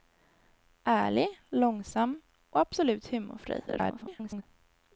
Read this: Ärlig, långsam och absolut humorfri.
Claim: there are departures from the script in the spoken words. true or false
true